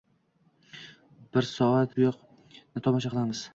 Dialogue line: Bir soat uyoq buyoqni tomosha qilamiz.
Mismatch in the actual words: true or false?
true